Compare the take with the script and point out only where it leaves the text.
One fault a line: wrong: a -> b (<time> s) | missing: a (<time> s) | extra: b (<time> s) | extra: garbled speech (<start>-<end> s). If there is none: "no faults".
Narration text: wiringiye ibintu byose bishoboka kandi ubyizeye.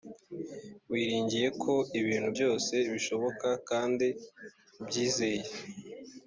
extra: ko (1.6 s)